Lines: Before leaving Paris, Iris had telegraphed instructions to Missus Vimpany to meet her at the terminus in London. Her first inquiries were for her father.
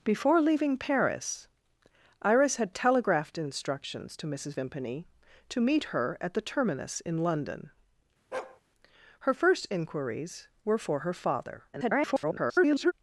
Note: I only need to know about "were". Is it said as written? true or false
true